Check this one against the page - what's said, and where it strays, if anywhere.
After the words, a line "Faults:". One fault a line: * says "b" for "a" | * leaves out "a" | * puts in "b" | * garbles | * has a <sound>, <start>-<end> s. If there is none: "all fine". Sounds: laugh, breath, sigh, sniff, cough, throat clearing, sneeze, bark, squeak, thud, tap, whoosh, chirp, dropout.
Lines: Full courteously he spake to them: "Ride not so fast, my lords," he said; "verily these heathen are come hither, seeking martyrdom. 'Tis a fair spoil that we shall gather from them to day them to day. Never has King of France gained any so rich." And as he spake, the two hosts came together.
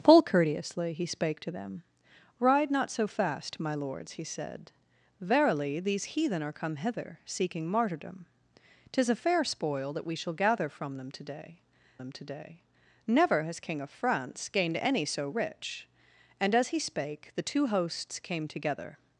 Full courteously he spake to them: "Ride not so fast, my lords," he said; "verily these heathen are come hither, seeking martyrdom. 'Tis a fair spoil that we shall gather from them to day them to day. Never has King of France gained any so rich." And as he spake, the two hosts came together.
Faults:
all fine